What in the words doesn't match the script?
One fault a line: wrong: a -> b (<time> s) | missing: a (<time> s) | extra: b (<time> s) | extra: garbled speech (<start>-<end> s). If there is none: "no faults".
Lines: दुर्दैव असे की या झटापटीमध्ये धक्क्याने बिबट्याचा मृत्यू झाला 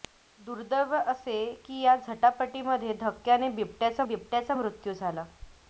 extra: बिबट्याचा (4.0 s)